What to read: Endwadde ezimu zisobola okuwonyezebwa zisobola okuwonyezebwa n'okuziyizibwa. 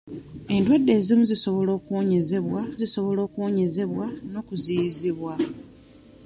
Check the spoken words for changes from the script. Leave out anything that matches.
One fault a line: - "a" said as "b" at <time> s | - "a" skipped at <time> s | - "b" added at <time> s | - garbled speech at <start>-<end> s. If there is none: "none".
none